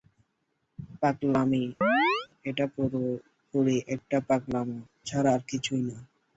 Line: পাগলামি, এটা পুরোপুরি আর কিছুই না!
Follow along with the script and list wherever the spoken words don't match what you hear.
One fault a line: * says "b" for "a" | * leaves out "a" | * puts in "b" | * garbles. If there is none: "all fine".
* puts in "একটা পাগলামো ছাড়া"